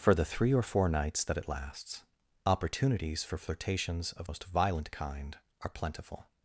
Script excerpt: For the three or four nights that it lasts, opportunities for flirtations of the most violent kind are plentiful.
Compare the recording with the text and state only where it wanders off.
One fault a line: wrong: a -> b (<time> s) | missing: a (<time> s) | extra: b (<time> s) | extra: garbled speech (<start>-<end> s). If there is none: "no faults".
missing: the (4.3 s)